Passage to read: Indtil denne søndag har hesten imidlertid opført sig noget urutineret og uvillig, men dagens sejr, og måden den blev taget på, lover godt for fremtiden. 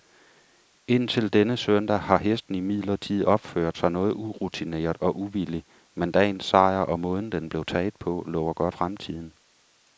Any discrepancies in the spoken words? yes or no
yes